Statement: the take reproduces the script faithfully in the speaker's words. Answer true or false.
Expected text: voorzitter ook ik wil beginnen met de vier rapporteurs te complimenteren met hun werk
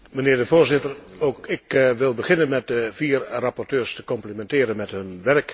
true